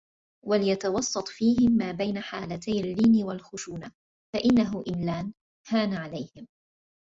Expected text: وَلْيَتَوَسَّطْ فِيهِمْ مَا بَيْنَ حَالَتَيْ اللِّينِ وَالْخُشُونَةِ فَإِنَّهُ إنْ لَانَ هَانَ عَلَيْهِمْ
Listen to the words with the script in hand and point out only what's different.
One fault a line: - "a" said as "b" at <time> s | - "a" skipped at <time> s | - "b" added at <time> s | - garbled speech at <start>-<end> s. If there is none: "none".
none